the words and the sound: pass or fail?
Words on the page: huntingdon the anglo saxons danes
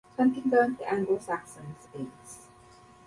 pass